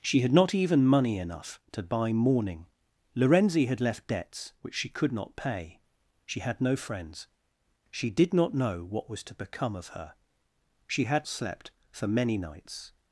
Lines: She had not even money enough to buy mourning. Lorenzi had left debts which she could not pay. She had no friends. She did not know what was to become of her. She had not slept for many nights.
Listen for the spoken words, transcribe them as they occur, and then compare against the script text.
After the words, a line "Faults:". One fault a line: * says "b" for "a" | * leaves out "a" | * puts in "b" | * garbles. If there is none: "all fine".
She had not even money enough to buy mourning. Lorenzi had left debts which she could not pay. She had no friends. She did not know what was to become of her. She had slept for many nights.
Faults:
* leaves out "not"